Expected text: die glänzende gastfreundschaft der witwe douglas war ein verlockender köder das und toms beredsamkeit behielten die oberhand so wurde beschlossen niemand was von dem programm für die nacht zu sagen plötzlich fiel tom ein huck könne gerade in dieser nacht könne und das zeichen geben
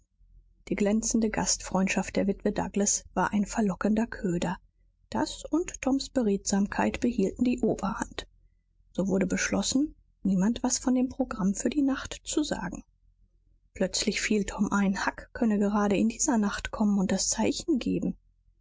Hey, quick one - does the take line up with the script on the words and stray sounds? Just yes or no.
no